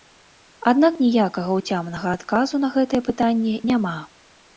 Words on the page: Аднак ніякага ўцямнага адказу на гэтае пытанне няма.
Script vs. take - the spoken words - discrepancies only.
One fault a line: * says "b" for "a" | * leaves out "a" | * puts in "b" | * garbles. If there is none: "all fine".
all fine